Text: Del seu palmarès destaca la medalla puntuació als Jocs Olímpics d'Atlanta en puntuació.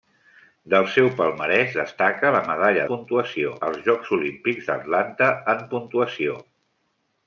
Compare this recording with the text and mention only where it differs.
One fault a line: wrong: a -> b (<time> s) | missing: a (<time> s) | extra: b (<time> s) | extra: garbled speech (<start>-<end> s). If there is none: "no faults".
no faults